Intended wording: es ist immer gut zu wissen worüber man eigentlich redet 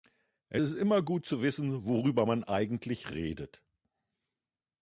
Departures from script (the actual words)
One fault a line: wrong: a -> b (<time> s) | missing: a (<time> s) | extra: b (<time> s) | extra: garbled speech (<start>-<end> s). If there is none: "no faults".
no faults